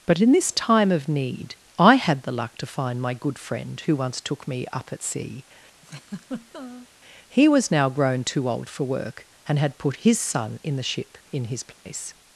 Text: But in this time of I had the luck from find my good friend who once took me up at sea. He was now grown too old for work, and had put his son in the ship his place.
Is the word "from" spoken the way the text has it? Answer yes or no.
no